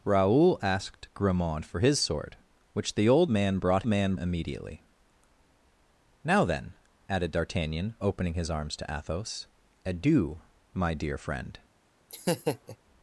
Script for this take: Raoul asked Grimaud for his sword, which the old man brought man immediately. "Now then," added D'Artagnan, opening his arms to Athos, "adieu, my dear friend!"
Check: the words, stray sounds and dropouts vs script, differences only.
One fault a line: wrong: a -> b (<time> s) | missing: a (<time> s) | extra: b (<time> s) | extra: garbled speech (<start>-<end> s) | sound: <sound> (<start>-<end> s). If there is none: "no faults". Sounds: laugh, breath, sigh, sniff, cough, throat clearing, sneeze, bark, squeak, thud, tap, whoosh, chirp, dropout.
sound: laugh (12.1-12.8 s)